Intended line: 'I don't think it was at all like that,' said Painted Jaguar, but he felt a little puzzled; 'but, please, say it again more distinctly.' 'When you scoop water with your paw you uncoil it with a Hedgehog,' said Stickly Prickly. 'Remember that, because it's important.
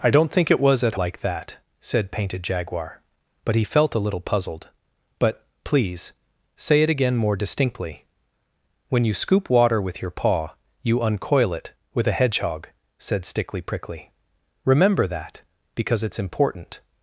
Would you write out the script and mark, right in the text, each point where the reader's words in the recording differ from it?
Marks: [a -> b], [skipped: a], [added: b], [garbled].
'I don't think it was at [skipped: all] like that,' said Painted Jaguar, but he felt a little puzzled; 'but, please, say it again more distinctly.' 'When you scoop water with your paw you uncoil it with a Hedgehog,' said Stickly Prickly. 'Remember that, because it's important.